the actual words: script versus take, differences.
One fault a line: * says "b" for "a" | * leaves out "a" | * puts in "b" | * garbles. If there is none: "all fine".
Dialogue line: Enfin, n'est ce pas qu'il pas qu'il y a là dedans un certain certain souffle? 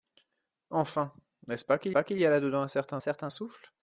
all fine